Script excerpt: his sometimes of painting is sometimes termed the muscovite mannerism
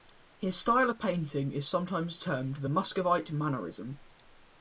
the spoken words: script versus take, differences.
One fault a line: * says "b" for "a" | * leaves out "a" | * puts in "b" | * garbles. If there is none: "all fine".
* says "style" for "sometimes"